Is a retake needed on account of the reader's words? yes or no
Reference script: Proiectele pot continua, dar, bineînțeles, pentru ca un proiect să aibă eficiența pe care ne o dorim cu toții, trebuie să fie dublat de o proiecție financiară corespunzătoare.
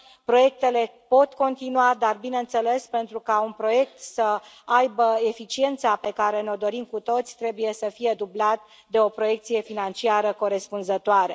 no